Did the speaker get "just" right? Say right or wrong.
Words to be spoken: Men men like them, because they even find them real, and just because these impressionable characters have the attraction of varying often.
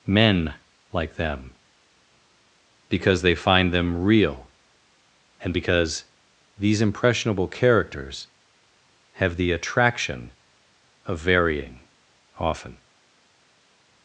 wrong